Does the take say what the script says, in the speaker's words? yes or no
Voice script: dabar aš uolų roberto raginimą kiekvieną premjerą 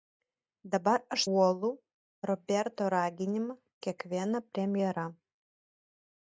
yes